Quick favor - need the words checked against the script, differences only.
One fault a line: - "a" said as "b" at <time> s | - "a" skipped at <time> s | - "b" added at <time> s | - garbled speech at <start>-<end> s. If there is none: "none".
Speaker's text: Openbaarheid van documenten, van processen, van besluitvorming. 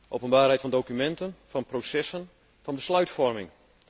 none